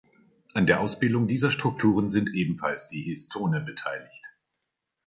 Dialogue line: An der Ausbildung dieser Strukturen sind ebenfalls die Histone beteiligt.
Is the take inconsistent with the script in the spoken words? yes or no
no